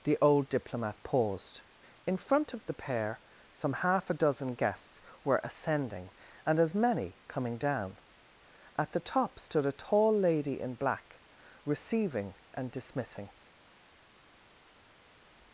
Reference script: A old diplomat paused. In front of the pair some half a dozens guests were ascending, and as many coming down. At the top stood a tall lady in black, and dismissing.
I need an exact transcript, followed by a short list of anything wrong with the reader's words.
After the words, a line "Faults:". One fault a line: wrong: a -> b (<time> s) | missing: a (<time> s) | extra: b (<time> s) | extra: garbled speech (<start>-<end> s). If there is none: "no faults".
The old diplomat paused. In front of the pair some half a dozen guests were ascending, and as many coming down. At the top stood a tall lady in black, receiving and dismissing.
Faults:
wrong: A -> The (0.0 s)
wrong: dozens -> dozen (4.1 s)
extra: receiving (11.6 s)